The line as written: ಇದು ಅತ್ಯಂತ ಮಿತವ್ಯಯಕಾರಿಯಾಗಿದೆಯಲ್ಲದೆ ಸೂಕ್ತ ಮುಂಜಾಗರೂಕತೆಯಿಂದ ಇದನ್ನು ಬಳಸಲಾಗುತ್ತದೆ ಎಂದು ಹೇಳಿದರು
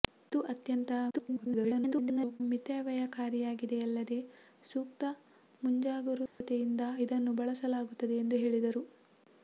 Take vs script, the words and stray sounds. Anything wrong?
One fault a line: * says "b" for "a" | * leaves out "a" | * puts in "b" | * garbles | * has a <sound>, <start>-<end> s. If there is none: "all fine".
* garbles
* has a dropout, 6.3-6.4 s